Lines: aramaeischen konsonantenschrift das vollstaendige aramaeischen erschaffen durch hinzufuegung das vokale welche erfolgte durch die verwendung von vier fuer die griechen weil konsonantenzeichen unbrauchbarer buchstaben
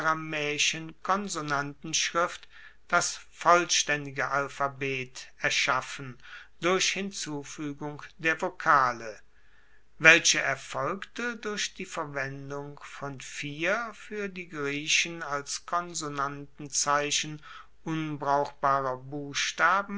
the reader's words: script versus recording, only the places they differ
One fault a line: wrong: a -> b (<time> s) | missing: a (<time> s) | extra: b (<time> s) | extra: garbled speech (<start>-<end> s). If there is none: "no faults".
wrong: aramaeischen -> alphabet (4.3 s)
wrong: das -> der (8.2 s)
wrong: weil -> als (15.2 s)